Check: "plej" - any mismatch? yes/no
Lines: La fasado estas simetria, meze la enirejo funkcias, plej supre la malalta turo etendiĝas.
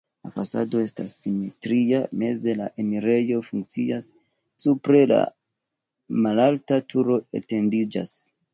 yes